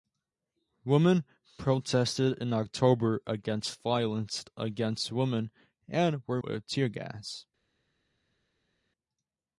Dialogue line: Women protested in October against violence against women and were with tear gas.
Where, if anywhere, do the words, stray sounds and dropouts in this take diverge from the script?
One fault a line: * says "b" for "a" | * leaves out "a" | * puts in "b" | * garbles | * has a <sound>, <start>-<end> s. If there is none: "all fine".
all fine